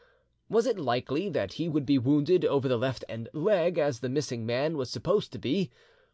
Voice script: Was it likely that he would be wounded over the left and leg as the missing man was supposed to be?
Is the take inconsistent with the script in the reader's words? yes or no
no